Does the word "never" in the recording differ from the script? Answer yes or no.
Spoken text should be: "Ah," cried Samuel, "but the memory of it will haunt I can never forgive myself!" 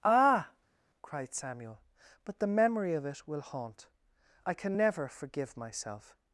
no